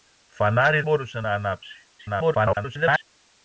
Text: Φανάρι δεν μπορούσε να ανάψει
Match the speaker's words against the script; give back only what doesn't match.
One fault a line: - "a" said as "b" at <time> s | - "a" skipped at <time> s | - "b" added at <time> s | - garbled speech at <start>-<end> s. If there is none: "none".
- "δεν" skipped at 0.8 s
- garbled speech at 2.0-3.0 s